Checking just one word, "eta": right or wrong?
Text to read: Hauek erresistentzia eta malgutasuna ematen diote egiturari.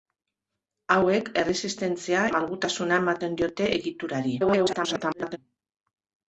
wrong